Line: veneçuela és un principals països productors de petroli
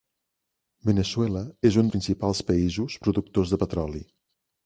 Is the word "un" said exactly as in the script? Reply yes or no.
yes